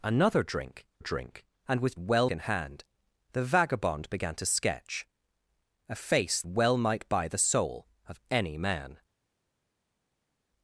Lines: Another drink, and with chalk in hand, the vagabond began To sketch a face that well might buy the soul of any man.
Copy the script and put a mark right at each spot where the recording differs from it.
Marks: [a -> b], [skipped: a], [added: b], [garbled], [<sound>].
Another drink, [added: drink] and with [chalk -> well] in hand, the vagabond began To sketch a face [skipped: that] well might buy the soul of any man.